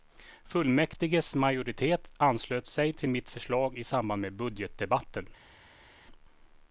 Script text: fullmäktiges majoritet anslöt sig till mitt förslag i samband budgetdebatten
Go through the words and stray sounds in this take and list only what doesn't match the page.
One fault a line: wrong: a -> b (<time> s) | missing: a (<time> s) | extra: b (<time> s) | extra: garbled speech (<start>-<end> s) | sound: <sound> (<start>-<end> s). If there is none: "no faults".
extra: med (4.2 s)